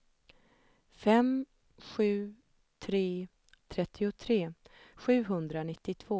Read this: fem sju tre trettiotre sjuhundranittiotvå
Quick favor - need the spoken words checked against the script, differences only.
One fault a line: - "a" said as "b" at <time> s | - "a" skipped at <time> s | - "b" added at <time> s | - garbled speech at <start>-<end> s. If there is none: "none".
none